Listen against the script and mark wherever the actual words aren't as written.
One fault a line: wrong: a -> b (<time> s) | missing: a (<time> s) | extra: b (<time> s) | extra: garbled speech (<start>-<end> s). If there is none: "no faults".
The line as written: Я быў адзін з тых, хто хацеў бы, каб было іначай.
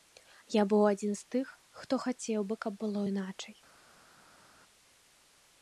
no faults